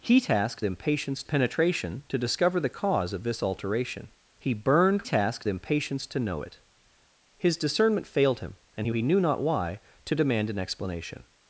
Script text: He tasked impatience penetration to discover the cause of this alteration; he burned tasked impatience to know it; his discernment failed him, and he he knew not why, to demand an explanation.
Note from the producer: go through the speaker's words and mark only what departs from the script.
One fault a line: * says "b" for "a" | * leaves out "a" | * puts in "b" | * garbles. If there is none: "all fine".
all fine